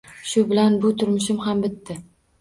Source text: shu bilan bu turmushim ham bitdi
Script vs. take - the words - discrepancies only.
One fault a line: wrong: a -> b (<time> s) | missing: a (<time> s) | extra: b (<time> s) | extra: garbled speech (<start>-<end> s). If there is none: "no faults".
no faults